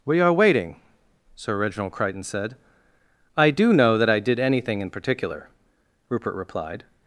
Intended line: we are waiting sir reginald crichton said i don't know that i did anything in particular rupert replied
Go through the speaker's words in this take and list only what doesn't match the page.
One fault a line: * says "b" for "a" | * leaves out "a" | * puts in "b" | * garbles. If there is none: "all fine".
* says "do" for "don't"